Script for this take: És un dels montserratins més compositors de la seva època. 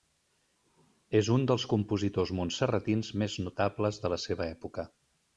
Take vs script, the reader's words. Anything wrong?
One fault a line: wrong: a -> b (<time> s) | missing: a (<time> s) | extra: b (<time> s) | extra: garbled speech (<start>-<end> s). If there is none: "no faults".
extra: compositors (1.7 s)
wrong: compositors -> notables (3.5 s)